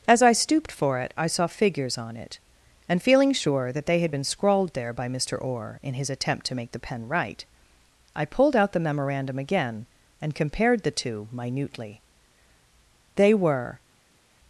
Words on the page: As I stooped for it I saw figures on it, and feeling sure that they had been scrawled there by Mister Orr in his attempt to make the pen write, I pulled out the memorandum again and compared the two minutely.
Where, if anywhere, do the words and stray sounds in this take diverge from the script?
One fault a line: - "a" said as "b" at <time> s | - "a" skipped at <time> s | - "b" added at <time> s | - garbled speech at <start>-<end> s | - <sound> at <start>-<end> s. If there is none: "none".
- "They were" added at 13.2 s